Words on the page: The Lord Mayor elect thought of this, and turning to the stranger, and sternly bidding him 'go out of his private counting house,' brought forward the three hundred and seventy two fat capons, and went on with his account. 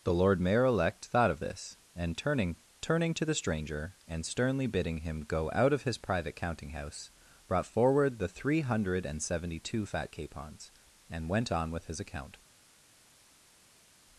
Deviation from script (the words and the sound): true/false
true